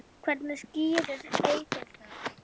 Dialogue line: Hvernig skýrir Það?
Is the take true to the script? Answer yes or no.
no